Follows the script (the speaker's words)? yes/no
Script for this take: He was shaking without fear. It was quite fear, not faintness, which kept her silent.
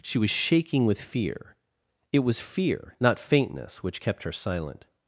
no